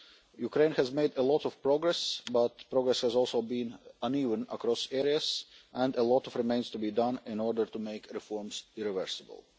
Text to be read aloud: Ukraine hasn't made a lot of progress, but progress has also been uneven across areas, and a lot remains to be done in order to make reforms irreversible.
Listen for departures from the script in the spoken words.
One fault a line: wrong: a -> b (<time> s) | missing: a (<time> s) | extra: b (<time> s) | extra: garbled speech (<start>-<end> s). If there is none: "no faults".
wrong: hasn't -> has (0.7 s)